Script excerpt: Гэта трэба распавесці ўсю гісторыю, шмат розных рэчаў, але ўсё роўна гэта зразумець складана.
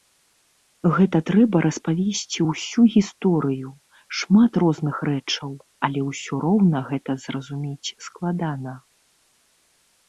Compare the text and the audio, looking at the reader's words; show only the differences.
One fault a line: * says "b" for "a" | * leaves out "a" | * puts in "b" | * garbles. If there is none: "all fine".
all fine